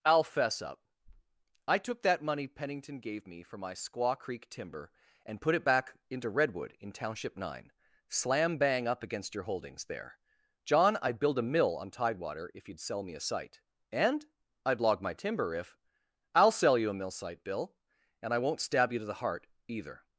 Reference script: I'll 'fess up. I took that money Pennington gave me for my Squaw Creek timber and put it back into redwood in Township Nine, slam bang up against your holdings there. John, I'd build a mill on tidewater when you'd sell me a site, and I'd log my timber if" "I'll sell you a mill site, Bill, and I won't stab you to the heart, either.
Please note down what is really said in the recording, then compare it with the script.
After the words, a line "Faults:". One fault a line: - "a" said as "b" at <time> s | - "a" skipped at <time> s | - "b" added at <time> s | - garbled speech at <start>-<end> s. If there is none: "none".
I'll 'fess up. I took that money Pennington gave me for my Squaw Creek timber and put it back into redwood in Township Nine, slam bang up against your holdings there. John, I'd build a mill on tidewater if you'd sell me a site, and I'd log my timber if" "I'll sell you a mill site, Bill, and I won't stab you to the heart, either.
Faults:
- "when" said as "if" at 12.5 s